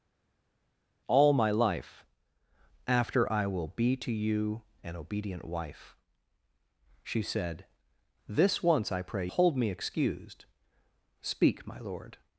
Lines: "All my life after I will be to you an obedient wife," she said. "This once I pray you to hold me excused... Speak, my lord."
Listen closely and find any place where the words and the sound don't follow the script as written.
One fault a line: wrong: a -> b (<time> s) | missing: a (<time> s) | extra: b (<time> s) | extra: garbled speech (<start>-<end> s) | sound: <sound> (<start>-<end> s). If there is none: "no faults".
missing: you to (9.3 s)